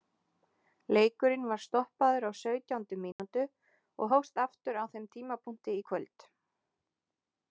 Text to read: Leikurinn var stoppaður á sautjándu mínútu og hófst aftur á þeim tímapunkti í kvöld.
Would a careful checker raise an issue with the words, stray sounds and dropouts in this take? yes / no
yes